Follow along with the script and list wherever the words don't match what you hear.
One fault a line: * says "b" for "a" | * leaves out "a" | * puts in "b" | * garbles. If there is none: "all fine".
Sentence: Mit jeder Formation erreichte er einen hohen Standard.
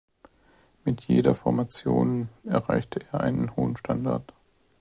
all fine